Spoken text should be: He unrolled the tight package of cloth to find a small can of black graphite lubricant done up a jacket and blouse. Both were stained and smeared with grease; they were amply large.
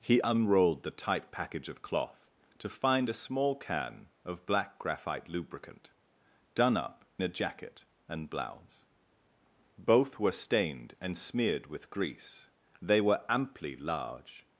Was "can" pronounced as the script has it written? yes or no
yes